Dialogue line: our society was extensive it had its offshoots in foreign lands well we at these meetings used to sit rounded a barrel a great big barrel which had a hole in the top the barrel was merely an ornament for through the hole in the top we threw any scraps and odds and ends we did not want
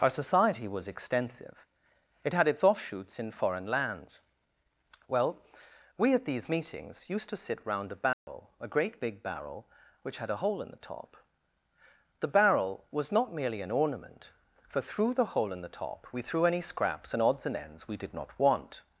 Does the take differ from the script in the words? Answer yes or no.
yes